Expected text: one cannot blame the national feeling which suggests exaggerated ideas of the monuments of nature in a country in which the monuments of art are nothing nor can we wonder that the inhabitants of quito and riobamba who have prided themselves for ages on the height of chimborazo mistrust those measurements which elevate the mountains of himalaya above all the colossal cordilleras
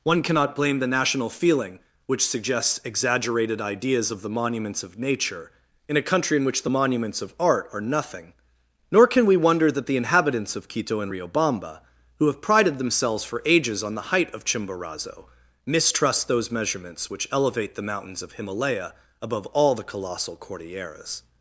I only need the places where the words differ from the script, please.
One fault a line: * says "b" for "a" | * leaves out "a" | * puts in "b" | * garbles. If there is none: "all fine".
all fine